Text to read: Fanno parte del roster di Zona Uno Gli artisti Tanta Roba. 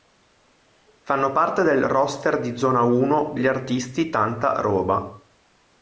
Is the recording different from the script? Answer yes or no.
no